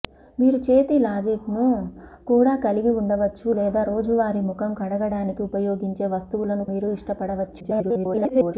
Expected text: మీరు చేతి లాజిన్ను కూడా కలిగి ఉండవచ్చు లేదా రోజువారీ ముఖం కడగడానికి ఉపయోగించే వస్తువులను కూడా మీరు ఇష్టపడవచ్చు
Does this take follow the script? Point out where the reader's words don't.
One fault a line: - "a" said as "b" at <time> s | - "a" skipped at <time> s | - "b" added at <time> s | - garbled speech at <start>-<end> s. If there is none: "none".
- "కూడా" skipped at 6.7 s
- garbled speech at 7.6-8.5 s